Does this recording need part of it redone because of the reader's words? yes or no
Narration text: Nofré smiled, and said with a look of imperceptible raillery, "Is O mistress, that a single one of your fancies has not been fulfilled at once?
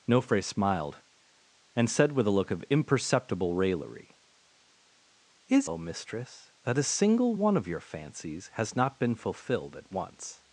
no